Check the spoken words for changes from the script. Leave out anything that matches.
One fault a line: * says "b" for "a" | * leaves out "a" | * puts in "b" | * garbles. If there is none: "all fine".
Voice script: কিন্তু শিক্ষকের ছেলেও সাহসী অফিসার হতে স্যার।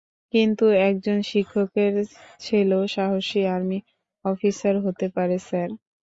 * puts in "একজন"
* puts in "আর্মি"
* puts in "পারে"